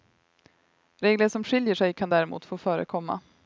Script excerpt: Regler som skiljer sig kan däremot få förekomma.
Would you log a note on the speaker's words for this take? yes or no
no